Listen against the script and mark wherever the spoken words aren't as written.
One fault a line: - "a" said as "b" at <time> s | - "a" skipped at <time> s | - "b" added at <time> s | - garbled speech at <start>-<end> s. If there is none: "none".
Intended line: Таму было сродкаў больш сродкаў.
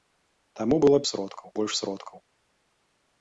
none